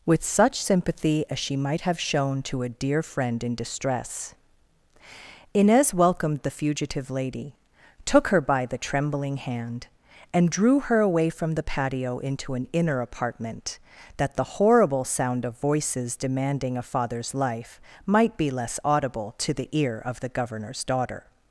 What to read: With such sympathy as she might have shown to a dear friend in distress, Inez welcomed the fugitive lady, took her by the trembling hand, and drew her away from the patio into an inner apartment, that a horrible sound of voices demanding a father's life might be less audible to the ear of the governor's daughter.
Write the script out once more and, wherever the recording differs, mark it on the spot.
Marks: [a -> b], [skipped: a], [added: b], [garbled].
With such sympathy as she might have shown to a dear friend in distress, Inez welcomed the fugitive lady, took her by the trembling hand, and drew her away from the patio into an inner apartment, that [a -> the] horrible sound of voices demanding a father's life might be less audible to the ear of the governor's daughter.